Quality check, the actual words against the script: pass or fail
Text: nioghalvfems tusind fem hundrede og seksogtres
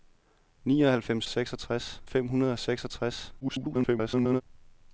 fail